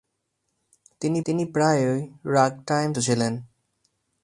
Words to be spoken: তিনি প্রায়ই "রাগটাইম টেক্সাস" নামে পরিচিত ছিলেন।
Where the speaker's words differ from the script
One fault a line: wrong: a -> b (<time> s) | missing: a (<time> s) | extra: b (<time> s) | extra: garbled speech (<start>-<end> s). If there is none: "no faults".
extra: তিনি (1.3 s)
missing: টেক্সাস নামে পরিচিত (2.9 s)